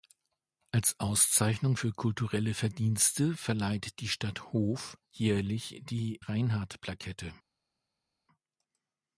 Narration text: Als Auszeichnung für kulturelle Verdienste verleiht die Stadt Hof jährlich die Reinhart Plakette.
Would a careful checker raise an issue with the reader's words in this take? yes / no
no